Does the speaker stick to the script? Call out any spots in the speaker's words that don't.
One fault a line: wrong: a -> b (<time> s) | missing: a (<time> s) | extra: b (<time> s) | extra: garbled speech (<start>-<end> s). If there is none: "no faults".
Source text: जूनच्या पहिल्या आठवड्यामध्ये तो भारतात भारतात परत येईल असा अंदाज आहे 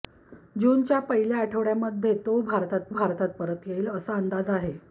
no faults